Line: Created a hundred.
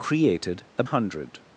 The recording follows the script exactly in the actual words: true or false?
true